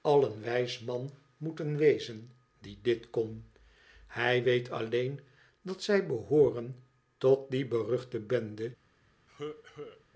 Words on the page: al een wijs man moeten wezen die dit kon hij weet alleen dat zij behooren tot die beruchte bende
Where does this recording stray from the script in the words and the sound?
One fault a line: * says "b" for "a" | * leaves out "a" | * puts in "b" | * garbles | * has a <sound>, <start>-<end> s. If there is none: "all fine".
* has a cough, 9.3-10.0 s